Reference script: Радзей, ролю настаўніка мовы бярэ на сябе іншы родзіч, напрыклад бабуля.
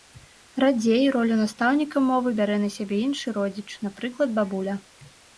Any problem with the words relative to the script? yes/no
no